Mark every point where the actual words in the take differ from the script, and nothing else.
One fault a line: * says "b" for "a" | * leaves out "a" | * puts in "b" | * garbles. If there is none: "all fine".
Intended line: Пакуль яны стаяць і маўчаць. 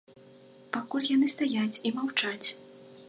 all fine